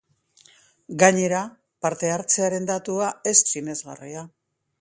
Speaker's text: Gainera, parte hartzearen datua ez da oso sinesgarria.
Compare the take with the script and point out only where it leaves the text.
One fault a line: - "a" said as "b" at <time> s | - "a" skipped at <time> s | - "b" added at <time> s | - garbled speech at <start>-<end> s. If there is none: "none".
- "da oso" skipped at 3.4 s